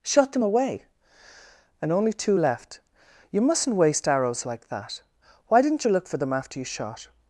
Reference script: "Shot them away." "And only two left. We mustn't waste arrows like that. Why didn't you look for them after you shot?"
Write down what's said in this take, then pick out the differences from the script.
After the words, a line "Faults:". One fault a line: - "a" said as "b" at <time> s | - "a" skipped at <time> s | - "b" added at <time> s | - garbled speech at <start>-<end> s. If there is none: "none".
"Shot them away." "And only two left. You mustn't waste arrows like that. Why didn't you look for them after you shot?"
Faults:
- "We" said as "You" at 3.3 s